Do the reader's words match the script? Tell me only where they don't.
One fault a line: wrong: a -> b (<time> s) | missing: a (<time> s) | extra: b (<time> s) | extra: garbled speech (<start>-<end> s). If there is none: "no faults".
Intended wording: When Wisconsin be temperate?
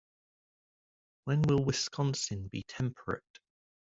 extra: will (1.4 s)